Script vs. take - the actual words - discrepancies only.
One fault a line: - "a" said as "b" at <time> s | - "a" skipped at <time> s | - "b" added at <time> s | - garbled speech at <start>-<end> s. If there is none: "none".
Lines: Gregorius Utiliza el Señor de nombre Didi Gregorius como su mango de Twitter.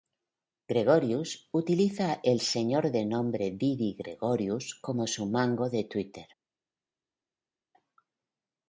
none